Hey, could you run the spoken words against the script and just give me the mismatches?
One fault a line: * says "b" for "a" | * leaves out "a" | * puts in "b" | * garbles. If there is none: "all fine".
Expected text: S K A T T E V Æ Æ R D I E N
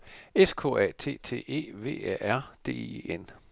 * leaves out "Æ"